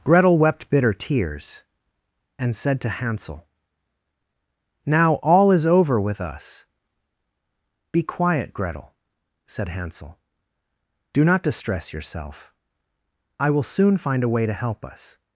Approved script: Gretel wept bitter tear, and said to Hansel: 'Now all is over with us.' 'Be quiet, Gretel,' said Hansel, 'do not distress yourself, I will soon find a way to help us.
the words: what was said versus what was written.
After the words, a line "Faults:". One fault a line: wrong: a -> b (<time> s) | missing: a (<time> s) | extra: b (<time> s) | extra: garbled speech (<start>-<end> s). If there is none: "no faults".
Gretel wept bitter tears, and said to Hansel: 'Now all is over with us.' 'Be quiet, Gretel,' said Hansel, 'do not distress yourself, I will soon find a way to help us.
Faults:
wrong: tear -> tears (0.9 s)